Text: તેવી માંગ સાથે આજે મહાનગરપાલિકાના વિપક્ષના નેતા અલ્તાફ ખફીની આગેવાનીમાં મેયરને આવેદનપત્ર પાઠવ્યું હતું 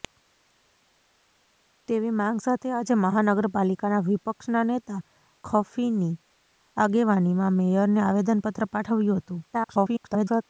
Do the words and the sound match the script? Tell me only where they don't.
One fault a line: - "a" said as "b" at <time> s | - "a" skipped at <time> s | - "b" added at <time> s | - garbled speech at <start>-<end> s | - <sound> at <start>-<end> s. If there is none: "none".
- "અલ્તાફ" skipped at 5.0 s
- garbled speech at 9.5-10.4 s